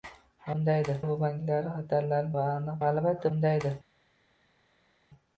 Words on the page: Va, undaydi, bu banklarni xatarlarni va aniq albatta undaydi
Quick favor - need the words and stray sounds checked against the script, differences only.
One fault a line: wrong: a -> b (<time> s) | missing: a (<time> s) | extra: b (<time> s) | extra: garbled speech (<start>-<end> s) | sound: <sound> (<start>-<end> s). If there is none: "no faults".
no faults